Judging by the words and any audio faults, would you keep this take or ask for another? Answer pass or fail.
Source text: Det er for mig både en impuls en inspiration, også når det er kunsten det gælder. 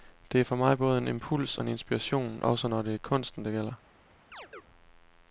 fail